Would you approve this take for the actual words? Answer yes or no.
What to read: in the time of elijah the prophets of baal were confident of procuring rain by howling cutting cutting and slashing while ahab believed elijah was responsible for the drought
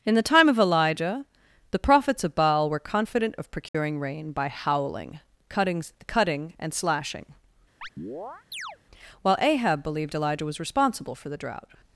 yes